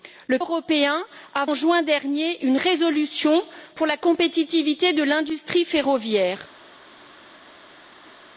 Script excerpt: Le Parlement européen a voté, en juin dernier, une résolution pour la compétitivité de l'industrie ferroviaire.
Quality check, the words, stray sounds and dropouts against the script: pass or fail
fail